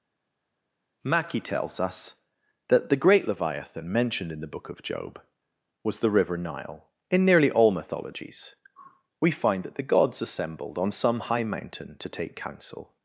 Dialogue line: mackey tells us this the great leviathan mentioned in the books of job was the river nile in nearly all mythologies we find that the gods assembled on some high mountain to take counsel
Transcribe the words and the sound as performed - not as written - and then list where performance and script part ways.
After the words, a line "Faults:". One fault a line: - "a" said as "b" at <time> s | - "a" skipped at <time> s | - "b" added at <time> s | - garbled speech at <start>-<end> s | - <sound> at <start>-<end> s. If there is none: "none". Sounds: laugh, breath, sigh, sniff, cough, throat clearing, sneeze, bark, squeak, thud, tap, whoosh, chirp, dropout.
mackey tells us that the great leviathan mentioned in the book of job was the river nile in nearly all mythologies we find that the gods assembled on some high mountain to take counsel
Faults:
- "this" said as "that" at 2.7 s
- "books" said as "book" at 4.5 s